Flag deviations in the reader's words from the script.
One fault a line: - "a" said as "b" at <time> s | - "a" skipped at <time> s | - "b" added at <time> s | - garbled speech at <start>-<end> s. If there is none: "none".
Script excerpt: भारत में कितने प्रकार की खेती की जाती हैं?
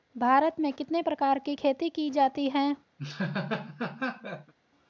none